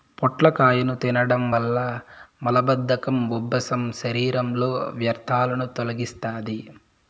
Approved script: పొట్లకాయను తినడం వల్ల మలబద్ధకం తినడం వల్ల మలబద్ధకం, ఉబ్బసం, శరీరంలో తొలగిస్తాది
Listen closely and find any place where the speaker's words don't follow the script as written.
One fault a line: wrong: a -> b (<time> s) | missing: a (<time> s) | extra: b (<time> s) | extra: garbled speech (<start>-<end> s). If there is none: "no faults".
missing: తినడం వల్ల మలబద్ధకం (3.3 s)
extra: వ్యర్థాలను (5.0 s)